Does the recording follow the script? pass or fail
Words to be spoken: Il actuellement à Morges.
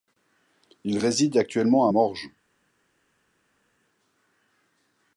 fail